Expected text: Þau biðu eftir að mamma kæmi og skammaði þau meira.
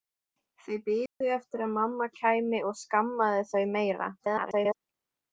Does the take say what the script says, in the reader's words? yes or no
no